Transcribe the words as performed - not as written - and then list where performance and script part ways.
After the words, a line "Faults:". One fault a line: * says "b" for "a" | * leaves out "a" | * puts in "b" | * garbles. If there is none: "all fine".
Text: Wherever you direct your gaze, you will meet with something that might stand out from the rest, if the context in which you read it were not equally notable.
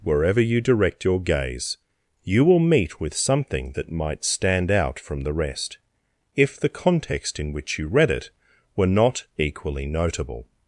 Wherever you direct your gaze, you will meet with something that might stand out from the rest, if the context in which you read it were not equally notable.
Faults:
all fine